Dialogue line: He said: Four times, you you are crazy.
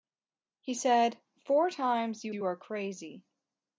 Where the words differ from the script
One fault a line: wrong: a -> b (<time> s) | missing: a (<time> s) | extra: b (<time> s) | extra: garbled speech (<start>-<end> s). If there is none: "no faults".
no faults